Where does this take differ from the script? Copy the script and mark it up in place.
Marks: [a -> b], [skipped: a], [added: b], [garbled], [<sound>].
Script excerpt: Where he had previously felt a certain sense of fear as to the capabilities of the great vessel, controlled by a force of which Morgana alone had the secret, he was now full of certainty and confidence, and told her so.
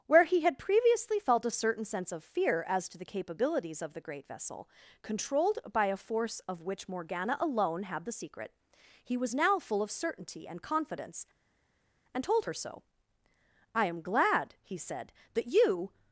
Where he had previously felt a certain sense of fear as to the capabilities of the great vessel, controlled by a force of which Morgana alone had the secret, he was now full of certainty and confidence, and told her so. [added: I am glad he said that you]